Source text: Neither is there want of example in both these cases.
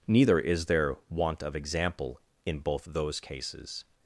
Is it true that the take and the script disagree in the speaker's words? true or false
true